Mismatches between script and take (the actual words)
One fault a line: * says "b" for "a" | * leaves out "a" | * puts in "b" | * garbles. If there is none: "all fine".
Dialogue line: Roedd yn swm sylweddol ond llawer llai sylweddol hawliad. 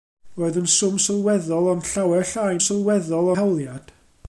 all fine